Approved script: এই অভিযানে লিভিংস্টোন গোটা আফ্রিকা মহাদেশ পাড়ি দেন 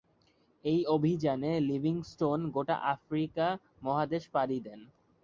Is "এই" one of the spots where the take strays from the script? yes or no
no